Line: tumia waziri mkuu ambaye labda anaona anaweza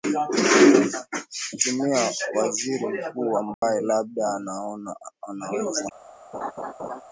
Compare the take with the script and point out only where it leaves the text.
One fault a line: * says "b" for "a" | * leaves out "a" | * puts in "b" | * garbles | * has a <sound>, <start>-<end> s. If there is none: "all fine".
* has a dropout, 3.5-3.6 s
* has a laugh, 6.3-7.0 s